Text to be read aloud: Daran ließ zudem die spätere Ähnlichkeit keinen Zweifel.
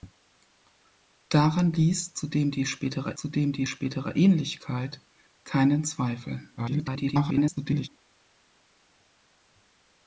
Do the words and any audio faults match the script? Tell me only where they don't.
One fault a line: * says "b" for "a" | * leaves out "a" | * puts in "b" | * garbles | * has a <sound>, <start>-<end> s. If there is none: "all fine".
* puts in "zudem die spätere"
* garbles